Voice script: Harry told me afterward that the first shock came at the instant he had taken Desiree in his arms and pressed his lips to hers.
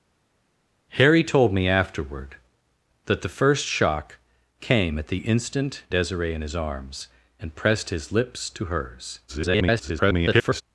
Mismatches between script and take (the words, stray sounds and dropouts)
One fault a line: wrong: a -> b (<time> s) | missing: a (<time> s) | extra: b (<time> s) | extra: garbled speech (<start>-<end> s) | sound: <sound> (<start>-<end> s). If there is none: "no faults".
missing: he had taken (5.8 s)
extra: garbled speech (9.3-10.6 s)